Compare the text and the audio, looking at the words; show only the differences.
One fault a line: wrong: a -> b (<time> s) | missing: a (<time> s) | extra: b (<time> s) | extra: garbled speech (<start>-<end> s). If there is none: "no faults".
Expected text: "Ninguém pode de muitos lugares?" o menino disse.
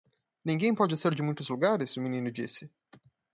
extra: ser (1.0 s)